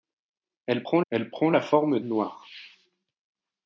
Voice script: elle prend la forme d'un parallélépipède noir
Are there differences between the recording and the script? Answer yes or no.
yes